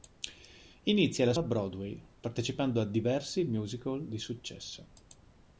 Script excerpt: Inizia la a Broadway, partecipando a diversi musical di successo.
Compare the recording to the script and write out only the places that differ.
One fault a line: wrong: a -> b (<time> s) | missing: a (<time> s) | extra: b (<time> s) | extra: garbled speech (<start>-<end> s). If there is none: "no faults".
no faults